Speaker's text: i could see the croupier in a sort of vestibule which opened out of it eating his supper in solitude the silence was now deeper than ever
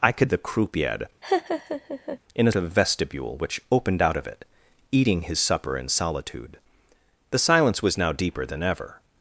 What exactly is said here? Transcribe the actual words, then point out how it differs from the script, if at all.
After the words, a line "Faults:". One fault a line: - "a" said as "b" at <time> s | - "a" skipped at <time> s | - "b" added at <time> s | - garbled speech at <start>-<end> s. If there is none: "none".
i could the croupier in a of vestibule which opened out of it eating his supper in solitude the silence was now deeper than ever
Faults:
- "see" skipped at 0.3 s
- "sort" skipped at 2.5 s